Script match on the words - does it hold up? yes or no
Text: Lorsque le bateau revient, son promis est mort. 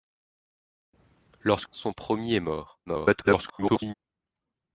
no